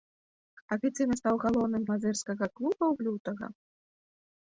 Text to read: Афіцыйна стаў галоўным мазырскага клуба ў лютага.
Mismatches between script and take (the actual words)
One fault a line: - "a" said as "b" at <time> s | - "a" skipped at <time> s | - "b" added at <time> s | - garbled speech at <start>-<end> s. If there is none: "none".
none